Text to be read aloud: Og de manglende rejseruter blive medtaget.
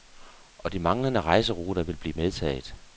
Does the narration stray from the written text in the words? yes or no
yes